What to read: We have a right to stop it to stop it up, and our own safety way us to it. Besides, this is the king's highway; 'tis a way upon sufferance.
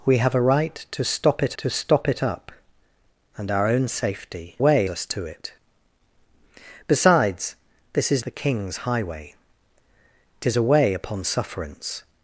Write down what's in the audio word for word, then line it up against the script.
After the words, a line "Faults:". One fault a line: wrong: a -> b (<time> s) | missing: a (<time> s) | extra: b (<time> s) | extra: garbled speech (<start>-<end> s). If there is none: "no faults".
We have a right to stop it to stop it up, and our own safety way us to it. Besides, this is the king's highway; 'tis a way upon sufferance.
Faults:
no faults